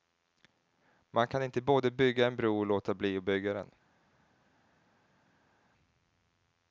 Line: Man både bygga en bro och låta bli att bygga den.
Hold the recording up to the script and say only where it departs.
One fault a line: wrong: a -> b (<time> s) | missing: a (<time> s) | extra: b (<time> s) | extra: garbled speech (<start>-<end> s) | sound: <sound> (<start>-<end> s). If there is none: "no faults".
extra: kan inte (1.3 s)